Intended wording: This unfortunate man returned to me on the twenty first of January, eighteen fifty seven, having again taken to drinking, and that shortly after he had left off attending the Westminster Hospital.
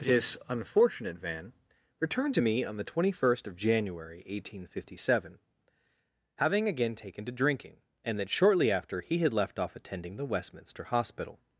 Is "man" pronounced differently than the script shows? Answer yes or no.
yes